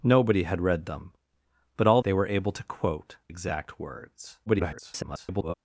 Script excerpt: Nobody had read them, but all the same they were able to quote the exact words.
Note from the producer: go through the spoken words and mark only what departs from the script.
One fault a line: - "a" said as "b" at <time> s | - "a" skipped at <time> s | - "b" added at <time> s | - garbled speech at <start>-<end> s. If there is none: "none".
- "the same" skipped at 2.0 s
- "the" skipped at 3.2 s
- garbled speech at 4.5-5.5 s